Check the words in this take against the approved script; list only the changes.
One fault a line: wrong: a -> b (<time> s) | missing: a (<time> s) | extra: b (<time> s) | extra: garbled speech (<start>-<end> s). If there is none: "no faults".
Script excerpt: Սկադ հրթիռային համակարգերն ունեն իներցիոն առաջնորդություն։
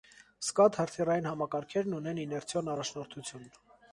no faults